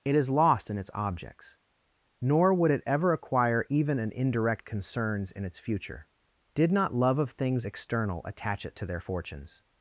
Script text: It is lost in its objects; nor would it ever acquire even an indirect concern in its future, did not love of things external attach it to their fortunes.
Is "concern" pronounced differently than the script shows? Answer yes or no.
yes